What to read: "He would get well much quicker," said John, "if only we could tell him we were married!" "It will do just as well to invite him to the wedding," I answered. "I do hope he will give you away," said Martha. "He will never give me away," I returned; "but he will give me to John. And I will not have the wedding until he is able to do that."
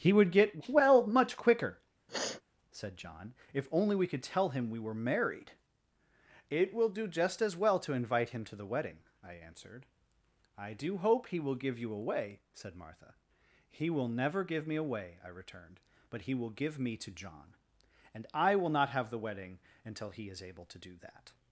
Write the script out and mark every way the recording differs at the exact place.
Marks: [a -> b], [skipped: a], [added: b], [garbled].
"He would get well much quicker," said John, "if only we could tell him we were married!" "It will do just as well to invite him to the wedding," I answered. "I do hope he will give you away," said Martha. "He will never give me away," I returned; "but he will give me to John. And I will not have the wedding until he is able to do that."